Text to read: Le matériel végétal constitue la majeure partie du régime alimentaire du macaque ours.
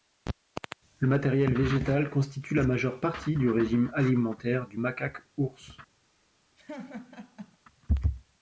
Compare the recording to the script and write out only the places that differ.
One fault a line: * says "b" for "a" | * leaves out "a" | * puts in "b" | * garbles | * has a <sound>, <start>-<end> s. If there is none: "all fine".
* has a laugh, 6.6-7.6 s